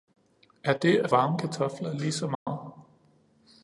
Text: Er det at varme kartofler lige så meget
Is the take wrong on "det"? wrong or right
right